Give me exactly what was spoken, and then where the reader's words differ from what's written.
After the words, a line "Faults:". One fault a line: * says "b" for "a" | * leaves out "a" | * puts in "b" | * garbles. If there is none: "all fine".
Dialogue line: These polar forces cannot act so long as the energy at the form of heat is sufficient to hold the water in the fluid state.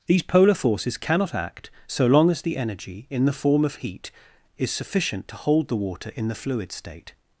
These polar forces cannot act so long as the energy in the form of heat is sufficient to hold the water in the fluid state.
Faults:
* says "in" for "at"